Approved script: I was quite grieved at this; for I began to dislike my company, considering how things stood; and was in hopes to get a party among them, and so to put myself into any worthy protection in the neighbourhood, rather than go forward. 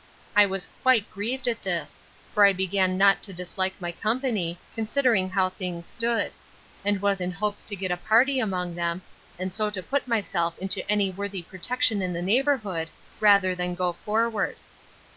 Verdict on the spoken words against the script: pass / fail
fail